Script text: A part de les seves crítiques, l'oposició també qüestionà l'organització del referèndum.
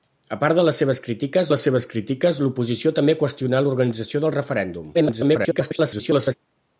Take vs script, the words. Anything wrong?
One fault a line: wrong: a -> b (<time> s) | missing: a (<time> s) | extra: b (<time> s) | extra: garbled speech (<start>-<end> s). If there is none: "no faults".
extra: les seves crítiques (1.5 s)
extra: garbled speech (4.9-6.3 s)